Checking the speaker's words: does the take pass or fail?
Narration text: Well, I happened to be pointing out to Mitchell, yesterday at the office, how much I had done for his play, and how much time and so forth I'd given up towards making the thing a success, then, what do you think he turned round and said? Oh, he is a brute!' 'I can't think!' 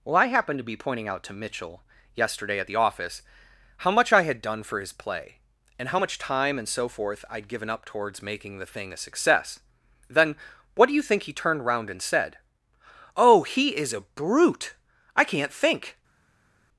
pass